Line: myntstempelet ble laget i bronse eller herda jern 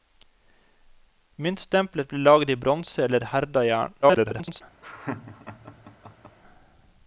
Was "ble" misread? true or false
false